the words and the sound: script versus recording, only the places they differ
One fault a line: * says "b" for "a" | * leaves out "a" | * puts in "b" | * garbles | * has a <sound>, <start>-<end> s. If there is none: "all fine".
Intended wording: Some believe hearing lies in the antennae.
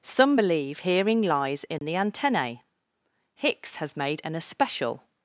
* has a dropout, 1.8-1.8 s
* puts in "Hicks has made an especial"